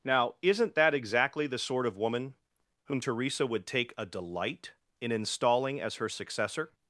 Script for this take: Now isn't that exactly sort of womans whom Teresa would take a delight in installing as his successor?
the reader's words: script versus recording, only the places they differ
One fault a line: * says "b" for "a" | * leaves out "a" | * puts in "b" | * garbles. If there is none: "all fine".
* puts in "the"
* says "woman" for "womans"
* says "her" for "his"